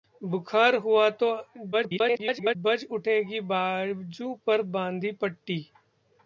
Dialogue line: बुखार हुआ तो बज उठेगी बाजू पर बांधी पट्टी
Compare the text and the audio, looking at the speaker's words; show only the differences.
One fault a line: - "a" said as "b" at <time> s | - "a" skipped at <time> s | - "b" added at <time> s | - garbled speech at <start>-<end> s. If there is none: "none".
- garbled speech at 1.7-2.6 s